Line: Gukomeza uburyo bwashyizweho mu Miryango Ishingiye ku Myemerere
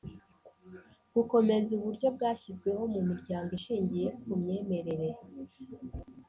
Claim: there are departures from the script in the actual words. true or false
false